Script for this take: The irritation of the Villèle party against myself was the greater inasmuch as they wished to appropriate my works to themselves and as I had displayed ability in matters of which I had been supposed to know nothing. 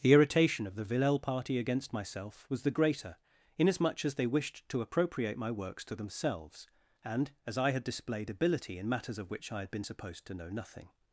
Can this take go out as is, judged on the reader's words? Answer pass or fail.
pass